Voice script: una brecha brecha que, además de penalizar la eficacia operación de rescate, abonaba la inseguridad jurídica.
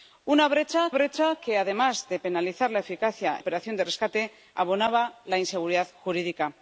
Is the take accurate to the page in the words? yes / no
yes